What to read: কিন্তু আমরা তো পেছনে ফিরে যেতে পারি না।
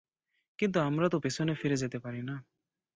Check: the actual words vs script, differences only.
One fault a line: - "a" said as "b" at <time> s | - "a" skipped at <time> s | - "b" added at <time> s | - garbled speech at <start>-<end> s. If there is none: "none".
none